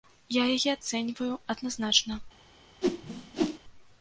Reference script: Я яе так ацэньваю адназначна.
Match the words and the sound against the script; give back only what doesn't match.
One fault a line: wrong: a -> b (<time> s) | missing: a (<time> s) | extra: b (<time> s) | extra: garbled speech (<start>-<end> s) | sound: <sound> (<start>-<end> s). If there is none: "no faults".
missing: так (0.7 s)
sound: whoosh (2.8-3.6 s)